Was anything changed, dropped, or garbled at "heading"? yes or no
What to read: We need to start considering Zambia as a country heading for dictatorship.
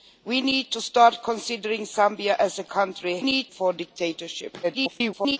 yes